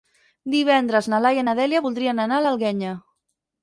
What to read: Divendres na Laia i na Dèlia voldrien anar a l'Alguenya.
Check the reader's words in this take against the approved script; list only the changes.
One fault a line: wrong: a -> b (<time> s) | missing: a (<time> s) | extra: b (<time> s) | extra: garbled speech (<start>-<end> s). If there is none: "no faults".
no faults